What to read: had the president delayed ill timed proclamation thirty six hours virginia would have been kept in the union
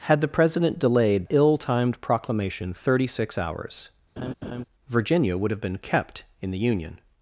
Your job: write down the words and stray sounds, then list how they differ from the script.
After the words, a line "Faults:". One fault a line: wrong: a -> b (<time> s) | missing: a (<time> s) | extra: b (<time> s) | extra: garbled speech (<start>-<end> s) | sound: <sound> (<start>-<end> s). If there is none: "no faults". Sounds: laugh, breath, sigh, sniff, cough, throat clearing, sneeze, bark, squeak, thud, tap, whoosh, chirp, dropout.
had the president delayed ill timed proclamation thirty six hours virginia would have been kept in the union
Faults:
sound: laugh (4.2-4.6 s)